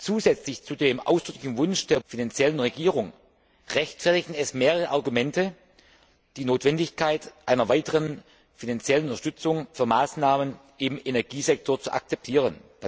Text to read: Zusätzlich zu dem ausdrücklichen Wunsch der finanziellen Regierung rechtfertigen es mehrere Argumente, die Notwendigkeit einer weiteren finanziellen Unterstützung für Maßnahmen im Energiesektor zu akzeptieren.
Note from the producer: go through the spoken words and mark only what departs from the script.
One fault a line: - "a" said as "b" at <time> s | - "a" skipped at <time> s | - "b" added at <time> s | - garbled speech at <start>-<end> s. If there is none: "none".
none